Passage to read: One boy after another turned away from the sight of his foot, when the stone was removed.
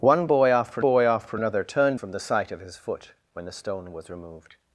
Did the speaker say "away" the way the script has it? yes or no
no